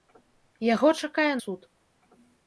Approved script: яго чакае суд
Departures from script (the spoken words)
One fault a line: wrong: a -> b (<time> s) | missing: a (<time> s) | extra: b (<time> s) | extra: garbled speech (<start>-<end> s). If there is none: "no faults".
no faults